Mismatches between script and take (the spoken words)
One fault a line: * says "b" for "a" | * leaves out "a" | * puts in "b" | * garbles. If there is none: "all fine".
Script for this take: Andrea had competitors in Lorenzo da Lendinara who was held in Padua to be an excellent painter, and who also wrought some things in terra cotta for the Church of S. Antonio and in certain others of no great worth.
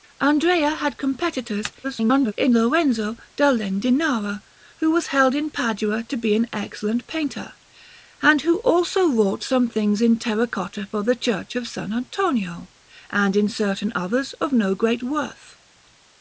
* garbles